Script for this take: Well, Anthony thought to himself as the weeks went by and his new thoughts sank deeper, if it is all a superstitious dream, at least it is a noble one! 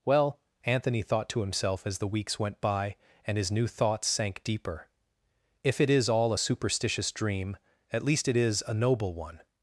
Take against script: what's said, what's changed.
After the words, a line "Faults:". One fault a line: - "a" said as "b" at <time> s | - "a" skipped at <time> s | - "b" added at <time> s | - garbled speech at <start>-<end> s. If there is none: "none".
Well, Anthony thought to himself as the weeks went by and his new thoughts sank deeper, if it is all a superstitious dream, at least it is a noble one!
Faults:
none